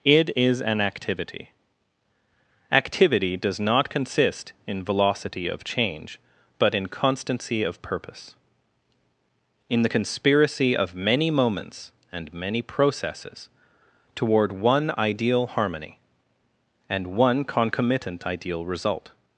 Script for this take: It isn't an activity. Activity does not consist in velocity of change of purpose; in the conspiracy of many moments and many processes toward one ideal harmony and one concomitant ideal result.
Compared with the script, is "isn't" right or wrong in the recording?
wrong